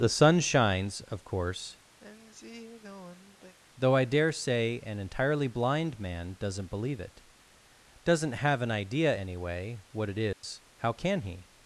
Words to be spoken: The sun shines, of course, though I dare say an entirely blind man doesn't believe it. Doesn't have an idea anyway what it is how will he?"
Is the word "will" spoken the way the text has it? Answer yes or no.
no